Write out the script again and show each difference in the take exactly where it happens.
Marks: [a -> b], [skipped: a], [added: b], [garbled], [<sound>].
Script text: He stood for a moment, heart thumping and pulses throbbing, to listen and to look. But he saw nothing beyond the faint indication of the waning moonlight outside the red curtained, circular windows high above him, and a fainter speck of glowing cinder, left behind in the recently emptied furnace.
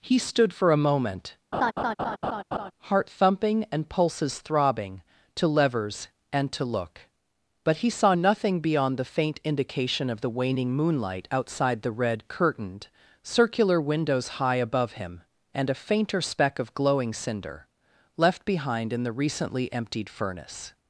He stood for a moment, [laugh] heart thumping and pulses throbbing, to [listen -> levers] and to look. But he saw nothing beyond the faint indication of the waning moonlight outside the red curtained, circular windows high above him, and a fainter speck of glowing cinder, left behind in the recently emptied furnace.